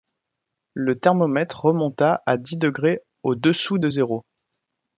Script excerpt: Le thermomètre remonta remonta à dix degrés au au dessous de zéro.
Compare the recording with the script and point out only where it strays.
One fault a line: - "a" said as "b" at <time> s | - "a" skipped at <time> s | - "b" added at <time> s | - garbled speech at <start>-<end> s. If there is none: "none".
- "remonta" skipped at 2.2 s
- "au" skipped at 3.4 s